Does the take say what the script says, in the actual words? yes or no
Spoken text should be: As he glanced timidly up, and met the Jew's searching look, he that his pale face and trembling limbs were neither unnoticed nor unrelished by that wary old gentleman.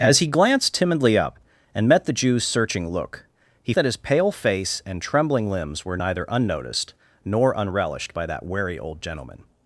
yes